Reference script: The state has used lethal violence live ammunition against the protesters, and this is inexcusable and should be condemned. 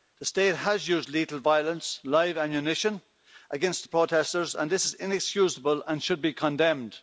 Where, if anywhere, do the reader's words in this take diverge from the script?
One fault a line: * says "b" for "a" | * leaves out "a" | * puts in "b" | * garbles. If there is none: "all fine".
all fine